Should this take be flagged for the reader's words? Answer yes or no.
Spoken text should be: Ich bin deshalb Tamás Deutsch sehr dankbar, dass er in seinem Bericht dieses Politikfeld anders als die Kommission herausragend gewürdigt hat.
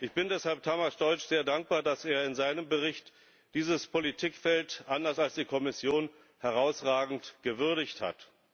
no